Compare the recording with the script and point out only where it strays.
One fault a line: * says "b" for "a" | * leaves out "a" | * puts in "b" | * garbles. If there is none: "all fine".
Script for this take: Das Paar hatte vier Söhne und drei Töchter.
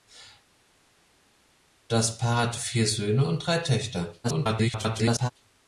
* garbles